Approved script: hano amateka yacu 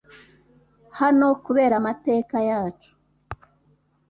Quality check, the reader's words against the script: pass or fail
fail